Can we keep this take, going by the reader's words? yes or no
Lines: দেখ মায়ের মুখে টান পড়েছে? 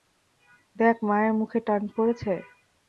yes